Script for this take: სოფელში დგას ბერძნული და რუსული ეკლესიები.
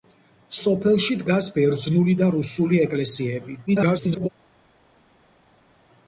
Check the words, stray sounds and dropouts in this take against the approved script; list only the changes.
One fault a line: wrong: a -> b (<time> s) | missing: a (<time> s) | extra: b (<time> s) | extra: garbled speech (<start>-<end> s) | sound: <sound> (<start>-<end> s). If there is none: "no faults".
extra: garbled speech (3.7-4.3 s)